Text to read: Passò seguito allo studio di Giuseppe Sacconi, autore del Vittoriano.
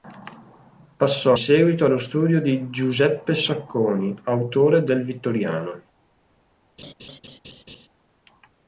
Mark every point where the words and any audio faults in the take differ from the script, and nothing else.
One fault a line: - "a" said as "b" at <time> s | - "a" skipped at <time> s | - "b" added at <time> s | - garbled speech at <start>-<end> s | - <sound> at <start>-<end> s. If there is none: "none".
- laugh at 6.8-7.9 s